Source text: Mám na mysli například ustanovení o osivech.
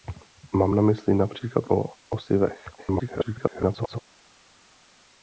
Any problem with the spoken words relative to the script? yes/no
yes